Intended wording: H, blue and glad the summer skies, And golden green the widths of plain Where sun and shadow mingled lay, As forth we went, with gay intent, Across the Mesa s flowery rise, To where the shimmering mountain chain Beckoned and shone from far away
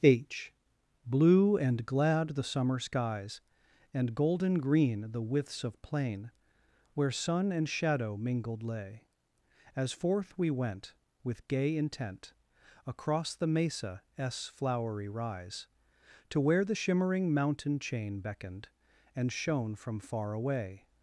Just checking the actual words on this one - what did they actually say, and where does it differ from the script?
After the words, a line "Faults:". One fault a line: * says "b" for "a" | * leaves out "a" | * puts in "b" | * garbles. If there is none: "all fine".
H, blue and glad the summer skies, And golden green the widths of plain Where sun and shadow mingled lay, As forth we went, with gay intent, Across the Mesa s flowery rise, To where the shimmering mountain chain Beckoned and shone from far away
Faults:
all fine